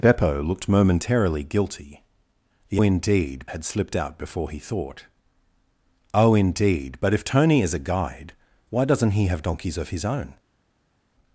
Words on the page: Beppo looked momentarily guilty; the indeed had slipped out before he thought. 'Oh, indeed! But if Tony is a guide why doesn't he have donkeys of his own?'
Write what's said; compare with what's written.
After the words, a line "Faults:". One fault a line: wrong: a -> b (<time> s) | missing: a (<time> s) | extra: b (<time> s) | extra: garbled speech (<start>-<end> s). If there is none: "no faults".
Beppo looked momentarily guilty; the indeed had slipped out before he thought. 'Oh, indeed! But if Tony is a guide why doesn't he have donkeys of his own?'
Faults:
no faults